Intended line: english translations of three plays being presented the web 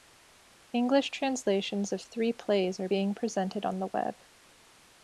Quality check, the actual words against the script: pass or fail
fail